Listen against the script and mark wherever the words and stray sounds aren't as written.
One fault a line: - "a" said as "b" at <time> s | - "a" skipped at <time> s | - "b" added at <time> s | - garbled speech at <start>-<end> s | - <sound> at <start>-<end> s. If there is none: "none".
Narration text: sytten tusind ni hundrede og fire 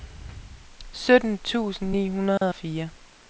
- dropout at 2.4-2.4 s